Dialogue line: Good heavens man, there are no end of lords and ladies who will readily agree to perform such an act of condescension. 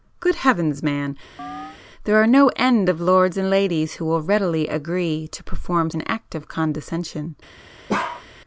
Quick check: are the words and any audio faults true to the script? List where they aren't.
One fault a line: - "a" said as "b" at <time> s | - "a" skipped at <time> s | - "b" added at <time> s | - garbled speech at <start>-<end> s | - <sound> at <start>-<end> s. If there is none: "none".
- chirp at 1.4-1.8 s
- "such" skipped at 5.9 s
- bark at 7.9-8.3 s